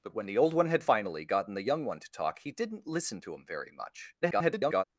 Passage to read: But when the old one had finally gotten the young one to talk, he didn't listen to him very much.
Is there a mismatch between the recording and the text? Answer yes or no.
yes